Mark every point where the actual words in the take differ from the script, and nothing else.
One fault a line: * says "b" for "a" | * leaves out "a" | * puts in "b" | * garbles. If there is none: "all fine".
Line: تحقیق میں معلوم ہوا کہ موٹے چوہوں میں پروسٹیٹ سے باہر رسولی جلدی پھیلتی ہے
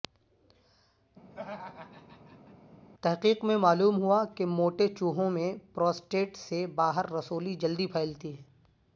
all fine